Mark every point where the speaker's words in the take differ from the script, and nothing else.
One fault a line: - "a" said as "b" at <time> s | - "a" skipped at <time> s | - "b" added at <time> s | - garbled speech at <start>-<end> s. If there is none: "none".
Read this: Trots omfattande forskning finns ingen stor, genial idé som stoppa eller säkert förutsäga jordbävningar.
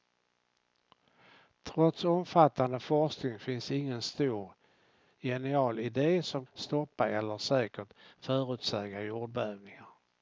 none